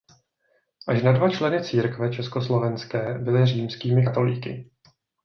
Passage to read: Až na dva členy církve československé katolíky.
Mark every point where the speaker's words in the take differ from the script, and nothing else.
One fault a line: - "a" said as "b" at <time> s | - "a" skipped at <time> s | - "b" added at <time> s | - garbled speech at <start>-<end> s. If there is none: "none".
- "byli římskými" added at 3.2 s